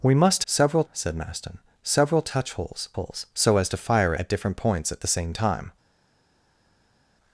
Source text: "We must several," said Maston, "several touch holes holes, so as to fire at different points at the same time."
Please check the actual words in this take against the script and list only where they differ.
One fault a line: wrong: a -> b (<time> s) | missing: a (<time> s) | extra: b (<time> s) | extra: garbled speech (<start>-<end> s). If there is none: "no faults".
no faults